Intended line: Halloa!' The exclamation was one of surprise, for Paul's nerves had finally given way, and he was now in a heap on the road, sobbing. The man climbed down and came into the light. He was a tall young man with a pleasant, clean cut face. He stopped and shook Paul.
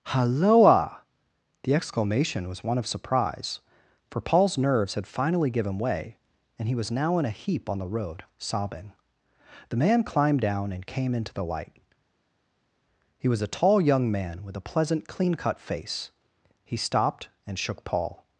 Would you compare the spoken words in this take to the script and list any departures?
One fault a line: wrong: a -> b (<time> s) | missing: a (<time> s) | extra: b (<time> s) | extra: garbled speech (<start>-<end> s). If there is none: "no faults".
no faults